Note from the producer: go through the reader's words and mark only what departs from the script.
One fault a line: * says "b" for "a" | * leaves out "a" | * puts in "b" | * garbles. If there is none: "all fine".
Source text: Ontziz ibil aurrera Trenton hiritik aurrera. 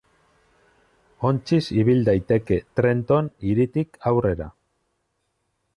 * says "daiteke" for "aurrera"